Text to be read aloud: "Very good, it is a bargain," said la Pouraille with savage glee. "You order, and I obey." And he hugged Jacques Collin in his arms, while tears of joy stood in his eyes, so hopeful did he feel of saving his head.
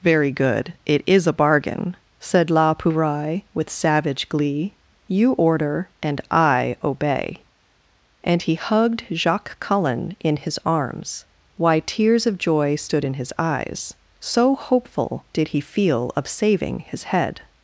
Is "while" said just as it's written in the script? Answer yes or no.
no